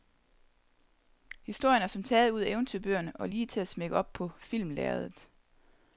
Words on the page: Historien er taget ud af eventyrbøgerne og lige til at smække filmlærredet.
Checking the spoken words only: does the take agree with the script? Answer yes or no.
no